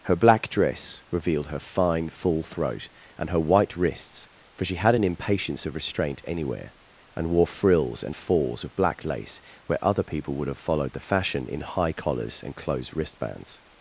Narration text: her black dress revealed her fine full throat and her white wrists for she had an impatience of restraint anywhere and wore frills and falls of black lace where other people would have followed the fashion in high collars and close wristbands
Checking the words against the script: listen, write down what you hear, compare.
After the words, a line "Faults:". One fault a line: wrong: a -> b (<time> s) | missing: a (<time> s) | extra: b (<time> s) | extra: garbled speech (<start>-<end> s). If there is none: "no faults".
her black dress revealed her fine full throat and her white wrists for she had an impatience of restraint anywhere and wore frills and falls of black lace where other people would have followed the fashion in high collars and closed wristbands
Faults:
wrong: close -> closed (12.5 s)